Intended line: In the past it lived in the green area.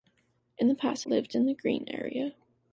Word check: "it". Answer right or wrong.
wrong